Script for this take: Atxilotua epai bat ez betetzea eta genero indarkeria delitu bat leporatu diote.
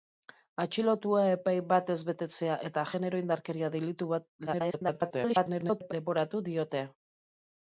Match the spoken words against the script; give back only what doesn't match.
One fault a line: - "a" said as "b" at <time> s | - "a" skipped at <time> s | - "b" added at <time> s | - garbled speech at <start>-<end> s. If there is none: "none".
- garbled speech at 4.5-5.9 s